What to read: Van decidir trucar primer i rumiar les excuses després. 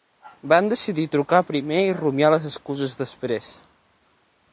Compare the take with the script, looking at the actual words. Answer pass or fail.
pass